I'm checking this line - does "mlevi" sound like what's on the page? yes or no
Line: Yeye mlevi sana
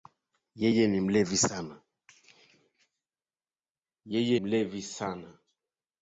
yes